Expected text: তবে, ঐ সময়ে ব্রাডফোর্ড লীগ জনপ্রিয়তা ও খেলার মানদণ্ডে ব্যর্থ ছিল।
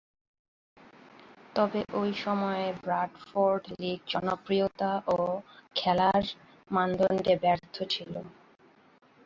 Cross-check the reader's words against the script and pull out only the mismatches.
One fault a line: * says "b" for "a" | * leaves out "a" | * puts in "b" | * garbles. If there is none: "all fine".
all fine